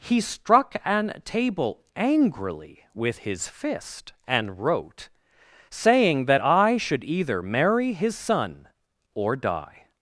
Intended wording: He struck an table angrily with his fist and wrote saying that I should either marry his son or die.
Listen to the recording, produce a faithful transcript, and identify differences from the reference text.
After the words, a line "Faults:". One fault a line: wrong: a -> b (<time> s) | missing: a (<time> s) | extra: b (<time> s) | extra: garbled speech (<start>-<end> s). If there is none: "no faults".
He struck an table angrily with his fist and wrote saying that I should either marry his son or die.
Faults:
no faults